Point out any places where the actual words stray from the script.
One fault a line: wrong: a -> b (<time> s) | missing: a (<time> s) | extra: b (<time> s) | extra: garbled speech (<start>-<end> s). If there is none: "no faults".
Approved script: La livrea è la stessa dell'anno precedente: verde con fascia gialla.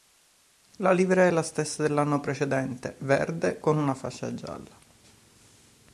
extra: una (3.8 s)